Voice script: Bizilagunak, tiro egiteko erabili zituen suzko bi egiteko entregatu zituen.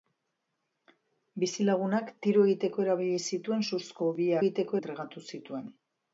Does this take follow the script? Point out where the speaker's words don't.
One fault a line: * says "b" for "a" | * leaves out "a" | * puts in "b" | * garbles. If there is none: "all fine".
all fine